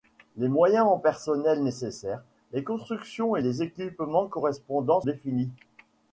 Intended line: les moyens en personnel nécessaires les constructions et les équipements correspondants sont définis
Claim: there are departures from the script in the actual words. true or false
true